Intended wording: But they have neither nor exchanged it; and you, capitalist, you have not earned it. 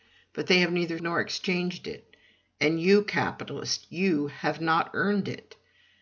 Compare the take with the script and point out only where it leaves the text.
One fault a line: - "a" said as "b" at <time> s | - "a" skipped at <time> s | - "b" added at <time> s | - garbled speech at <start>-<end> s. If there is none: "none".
none